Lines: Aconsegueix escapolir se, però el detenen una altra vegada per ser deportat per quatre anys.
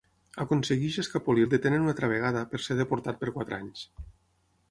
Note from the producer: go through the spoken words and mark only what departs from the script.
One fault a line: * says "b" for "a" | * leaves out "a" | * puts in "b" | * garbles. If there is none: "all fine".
* leaves out "se però"